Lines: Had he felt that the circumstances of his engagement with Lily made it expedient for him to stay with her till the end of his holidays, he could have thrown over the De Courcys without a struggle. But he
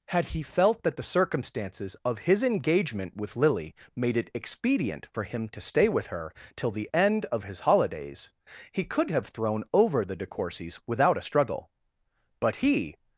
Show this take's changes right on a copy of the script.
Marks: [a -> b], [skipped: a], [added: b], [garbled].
Had he felt that the circumstances of his engagement with Lily made it expedient for him to stay with her till the end of his holidays, he could have thrown over the De Courcys without a struggle. But he